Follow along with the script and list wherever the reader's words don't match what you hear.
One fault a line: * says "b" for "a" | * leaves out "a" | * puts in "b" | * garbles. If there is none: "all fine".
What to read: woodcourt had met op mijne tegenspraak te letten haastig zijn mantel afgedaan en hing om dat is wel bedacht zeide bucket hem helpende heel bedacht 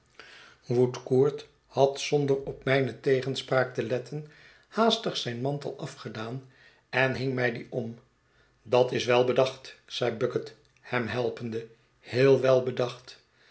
* says "zonder" for "met"
* puts in "mij dien"
* puts in "wel"